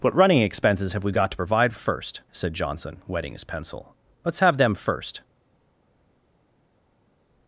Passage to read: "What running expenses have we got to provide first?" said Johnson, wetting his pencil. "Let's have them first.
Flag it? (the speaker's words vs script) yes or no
no